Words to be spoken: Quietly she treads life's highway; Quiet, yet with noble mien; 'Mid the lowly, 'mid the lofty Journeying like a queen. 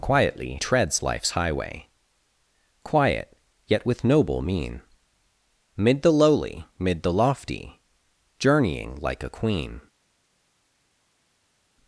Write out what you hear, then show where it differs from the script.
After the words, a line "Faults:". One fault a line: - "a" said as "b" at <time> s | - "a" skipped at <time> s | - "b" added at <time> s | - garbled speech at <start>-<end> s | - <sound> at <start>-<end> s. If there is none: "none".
Quietly treads life's highway; Quiet, yet with noble mien; 'Mid the lowly, 'mid the lofty Journeying like a queen.
Faults:
- "she" skipped at 0.6 s